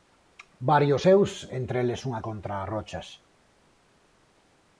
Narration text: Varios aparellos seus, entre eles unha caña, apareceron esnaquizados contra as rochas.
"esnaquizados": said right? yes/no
no